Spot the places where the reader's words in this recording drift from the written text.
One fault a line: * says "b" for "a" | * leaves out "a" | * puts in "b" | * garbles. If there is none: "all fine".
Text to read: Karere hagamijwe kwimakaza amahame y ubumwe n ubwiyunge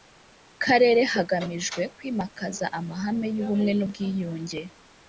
all fine